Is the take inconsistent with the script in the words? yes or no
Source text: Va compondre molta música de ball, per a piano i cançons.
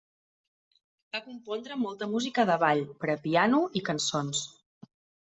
no